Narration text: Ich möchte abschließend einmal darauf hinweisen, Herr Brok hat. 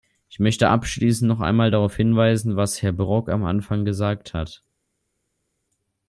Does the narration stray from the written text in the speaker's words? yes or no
yes